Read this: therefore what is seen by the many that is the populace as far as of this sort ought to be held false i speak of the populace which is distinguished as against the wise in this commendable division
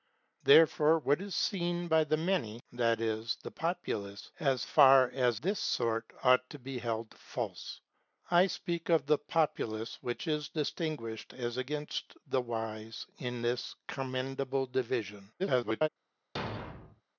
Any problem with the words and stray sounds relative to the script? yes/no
yes